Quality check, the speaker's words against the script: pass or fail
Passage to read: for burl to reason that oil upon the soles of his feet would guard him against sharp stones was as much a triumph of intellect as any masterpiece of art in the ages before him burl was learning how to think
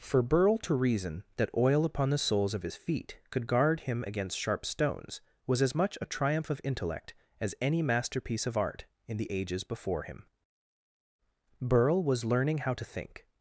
fail